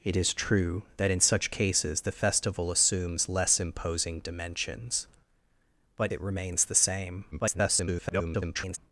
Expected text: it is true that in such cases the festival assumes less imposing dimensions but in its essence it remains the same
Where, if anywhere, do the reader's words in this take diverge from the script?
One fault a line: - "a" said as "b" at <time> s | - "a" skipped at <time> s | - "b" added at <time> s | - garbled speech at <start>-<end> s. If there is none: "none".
- "in its essence" skipped at 6.1 s
- garbled speech at 7.3-8.8 s